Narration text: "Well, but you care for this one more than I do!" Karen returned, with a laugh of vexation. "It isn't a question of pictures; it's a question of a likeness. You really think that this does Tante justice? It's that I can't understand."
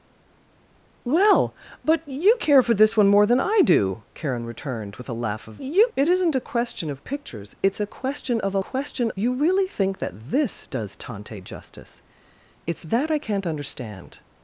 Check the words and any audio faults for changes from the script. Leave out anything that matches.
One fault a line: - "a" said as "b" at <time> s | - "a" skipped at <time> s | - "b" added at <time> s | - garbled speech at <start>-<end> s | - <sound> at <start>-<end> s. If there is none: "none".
- "vexation" said as "you" at 5.6 s
- "likeness" said as "question" at 8.6 s